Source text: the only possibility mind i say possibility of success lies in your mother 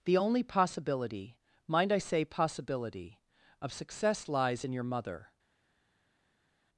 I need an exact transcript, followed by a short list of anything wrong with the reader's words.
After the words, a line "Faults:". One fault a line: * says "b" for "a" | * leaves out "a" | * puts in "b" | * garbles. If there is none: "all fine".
the only possibility mind i say possibility of success lies in your mother
Faults:
all fine